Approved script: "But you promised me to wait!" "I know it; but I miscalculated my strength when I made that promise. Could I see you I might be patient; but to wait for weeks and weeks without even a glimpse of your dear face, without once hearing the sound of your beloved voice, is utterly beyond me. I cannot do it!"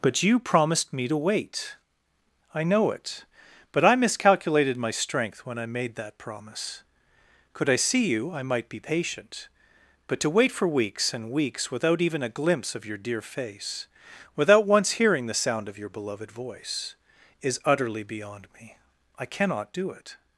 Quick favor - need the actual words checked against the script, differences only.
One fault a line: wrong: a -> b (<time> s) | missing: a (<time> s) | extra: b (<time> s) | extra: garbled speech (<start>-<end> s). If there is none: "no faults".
no faults